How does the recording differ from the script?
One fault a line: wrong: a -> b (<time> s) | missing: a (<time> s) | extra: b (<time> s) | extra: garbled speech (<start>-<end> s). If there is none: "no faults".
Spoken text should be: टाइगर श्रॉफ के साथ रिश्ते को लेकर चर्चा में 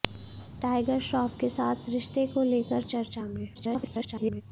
extra: garbled speech (3.5-4.4 s)